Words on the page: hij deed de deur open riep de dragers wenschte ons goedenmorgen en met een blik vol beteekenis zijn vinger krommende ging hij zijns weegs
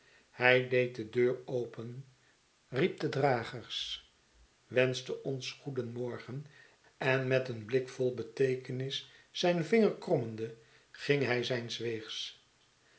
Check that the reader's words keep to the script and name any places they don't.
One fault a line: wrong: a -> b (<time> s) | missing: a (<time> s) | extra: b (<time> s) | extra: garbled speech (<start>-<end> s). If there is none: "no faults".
no faults